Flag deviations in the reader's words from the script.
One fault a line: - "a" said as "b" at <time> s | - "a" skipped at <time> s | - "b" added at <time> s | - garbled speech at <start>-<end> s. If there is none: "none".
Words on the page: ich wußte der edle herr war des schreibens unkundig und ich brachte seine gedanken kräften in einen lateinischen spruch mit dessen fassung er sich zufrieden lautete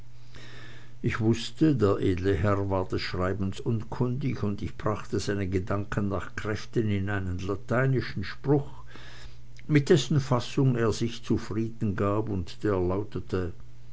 - "nach" added at 6.1 s
- "gab und der" added at 12.0 s